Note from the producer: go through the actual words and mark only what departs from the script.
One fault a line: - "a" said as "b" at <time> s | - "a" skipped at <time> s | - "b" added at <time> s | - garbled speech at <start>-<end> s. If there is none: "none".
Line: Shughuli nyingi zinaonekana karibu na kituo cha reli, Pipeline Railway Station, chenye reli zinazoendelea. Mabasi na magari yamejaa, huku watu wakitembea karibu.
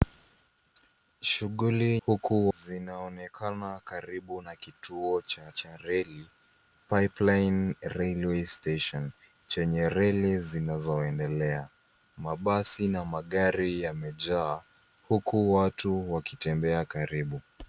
- "nyingi" said as "huku" at 2.1 s
- "cha" added at 5.5 s